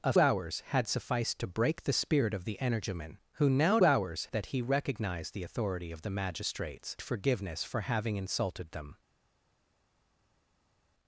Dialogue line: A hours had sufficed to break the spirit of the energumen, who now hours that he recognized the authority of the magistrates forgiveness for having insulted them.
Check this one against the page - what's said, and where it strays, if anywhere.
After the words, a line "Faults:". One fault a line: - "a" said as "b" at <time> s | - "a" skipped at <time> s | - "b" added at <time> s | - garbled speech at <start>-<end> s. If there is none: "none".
A hours had sufficed to break the spirit of the energumen, who now hours that he recognized the authority of the magistrates forgiveness for having insulted them.
Faults:
none